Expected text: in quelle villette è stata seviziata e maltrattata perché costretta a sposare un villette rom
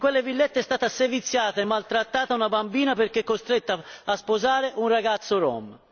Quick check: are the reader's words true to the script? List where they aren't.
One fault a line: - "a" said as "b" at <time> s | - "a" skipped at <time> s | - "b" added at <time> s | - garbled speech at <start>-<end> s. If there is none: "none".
- "una bambina" added at 2.4 s
- "villette" said as "ragazzo" at 4.9 s